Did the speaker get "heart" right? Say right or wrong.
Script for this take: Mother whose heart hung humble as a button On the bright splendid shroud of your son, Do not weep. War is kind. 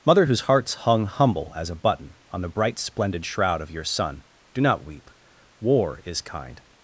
wrong